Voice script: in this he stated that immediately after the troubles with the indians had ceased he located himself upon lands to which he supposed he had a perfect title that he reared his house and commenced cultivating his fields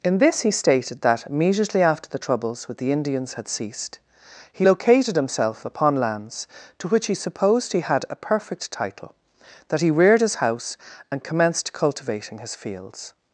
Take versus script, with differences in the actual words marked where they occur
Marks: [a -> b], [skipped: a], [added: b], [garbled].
in this he stated that immediately after the troubles with the indians had ceased he located himself upon lands to which he supposed he had a perfect title that he reared his house and commenced cultivating his fields